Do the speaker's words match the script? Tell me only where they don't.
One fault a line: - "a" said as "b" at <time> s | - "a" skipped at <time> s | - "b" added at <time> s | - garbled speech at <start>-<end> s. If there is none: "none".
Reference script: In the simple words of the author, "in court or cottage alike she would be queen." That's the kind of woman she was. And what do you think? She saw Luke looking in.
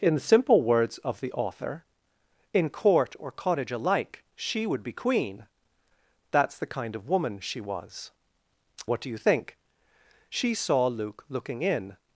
- "And" skipped at 8.1 s